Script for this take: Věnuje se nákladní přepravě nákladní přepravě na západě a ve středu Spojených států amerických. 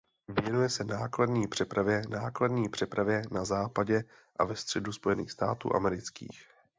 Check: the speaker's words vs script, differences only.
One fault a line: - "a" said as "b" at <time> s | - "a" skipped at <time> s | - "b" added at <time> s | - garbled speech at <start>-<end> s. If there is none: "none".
none